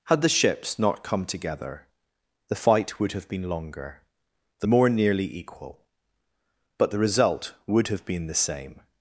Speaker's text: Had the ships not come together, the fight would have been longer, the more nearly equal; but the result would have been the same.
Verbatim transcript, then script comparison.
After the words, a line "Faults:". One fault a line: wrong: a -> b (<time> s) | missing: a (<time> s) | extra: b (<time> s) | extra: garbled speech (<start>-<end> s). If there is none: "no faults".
Had the ships not come together, the fight would have been longer, the more nearly equal; but the result would have been the same.
Faults:
no faults